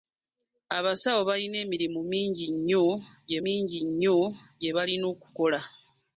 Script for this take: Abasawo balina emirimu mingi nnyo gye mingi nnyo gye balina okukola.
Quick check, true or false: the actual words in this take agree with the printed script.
true